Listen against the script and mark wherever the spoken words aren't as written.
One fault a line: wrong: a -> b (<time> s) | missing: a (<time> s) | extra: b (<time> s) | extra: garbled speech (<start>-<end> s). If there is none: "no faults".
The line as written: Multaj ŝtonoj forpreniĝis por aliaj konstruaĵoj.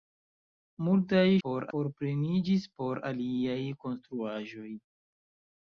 wrong: ŝtonoj -> por (1.4 s)